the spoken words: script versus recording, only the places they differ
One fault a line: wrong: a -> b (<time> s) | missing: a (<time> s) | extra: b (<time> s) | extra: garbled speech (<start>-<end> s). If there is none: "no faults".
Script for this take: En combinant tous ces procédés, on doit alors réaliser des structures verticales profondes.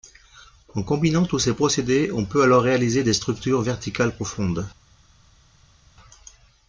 wrong: doit -> peut (2.2 s)